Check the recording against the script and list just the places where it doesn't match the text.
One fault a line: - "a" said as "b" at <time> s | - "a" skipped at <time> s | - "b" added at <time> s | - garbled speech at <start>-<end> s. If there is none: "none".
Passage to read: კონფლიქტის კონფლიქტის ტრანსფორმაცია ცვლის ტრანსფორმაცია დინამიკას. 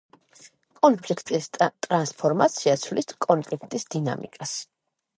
- "კონფლიქტის" skipped at 1.5 s
- "ტრანსფორმაცია" said as "კონფლიქტის" at 3.3 s